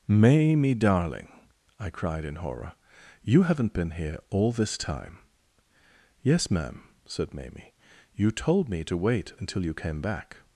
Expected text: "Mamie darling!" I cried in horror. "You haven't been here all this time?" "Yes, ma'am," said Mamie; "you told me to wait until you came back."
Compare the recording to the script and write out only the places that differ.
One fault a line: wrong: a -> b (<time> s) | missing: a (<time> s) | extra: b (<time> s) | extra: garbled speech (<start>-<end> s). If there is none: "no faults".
no faults